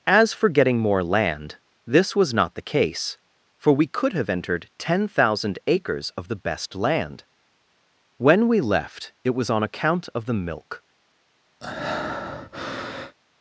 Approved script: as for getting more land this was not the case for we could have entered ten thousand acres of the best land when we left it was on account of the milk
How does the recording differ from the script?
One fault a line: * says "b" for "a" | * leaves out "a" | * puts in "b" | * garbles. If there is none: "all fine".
all fine